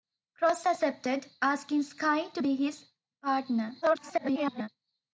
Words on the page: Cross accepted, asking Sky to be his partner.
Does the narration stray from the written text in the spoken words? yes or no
yes